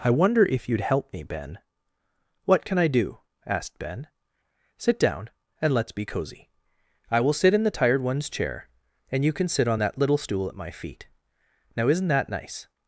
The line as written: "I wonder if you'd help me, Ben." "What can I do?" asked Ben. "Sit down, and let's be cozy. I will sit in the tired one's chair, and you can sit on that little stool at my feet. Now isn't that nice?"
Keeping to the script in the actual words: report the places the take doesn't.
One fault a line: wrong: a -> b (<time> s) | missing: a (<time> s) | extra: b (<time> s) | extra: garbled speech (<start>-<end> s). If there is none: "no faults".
no faults